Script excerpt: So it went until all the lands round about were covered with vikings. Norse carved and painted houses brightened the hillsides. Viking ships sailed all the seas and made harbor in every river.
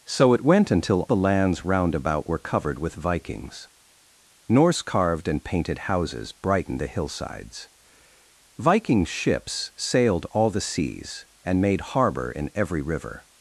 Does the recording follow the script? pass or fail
fail